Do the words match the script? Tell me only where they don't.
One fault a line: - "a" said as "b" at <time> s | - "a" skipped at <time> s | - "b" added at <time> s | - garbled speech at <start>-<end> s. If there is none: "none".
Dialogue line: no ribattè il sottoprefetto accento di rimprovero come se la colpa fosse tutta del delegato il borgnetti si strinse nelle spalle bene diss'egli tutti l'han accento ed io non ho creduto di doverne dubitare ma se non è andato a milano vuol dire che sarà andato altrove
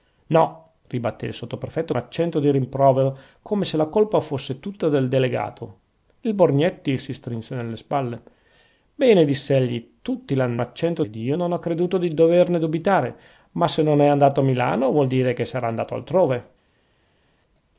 none